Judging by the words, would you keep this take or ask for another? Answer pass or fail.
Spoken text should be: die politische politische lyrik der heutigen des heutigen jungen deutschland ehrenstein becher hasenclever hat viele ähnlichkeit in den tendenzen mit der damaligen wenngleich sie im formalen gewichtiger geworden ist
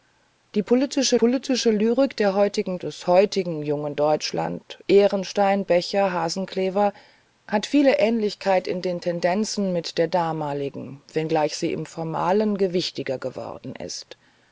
pass